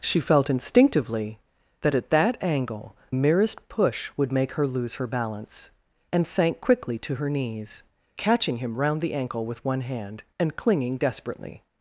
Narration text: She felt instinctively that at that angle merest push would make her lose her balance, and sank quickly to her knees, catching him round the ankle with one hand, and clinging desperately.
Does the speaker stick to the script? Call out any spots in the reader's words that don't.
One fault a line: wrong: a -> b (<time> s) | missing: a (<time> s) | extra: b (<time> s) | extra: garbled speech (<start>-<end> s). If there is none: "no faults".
no faults